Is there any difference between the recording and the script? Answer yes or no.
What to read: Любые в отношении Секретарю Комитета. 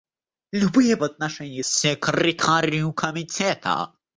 no